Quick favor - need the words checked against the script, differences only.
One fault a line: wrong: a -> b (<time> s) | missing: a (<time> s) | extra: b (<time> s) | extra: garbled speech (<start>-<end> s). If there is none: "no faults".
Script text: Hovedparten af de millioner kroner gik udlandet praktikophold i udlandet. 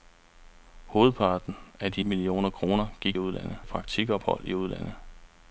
no faults